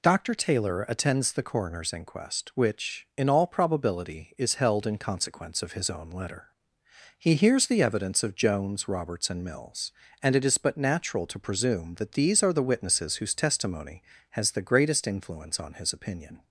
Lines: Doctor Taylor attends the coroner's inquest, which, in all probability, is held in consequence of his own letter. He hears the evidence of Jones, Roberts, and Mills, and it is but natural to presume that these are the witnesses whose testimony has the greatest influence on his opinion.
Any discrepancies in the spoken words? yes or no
no